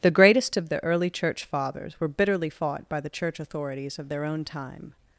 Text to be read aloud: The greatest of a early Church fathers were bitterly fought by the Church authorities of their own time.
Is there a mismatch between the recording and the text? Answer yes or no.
yes